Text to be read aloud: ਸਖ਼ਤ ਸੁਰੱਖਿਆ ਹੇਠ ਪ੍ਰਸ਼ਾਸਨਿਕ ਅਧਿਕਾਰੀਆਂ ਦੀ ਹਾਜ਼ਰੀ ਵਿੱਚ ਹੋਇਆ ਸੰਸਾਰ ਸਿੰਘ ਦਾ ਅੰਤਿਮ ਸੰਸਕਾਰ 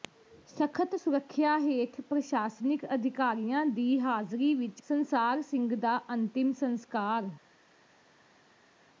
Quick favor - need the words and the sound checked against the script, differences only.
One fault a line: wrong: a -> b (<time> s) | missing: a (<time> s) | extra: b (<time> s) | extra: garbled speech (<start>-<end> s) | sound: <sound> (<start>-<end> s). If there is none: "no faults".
missing: ਹੋਇਆ (4.8 s)